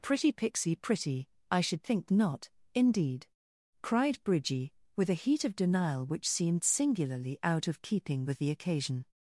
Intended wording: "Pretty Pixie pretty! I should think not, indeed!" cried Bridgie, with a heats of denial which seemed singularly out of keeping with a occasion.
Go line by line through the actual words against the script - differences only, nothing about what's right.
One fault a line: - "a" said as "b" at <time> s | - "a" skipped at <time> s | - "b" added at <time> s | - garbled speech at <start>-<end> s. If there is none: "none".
- "heats" said as "heat" at 5.1 s
- "a" said as "the" at 8.4 s